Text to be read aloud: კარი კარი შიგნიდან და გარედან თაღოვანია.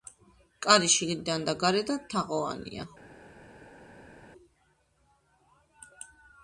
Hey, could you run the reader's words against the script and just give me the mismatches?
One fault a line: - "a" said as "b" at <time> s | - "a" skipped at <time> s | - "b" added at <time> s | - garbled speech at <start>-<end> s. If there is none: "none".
- "კარი" skipped at 0.9 s